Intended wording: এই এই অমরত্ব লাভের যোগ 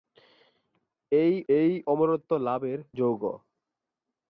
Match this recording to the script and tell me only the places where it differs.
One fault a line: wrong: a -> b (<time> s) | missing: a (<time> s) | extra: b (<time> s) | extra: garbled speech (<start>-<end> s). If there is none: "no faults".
no faults